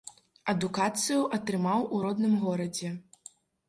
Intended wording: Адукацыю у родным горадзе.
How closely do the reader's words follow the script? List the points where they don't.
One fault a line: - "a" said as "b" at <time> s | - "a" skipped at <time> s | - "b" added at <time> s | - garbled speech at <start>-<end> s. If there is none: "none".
- "атрымаў" added at 1.4 s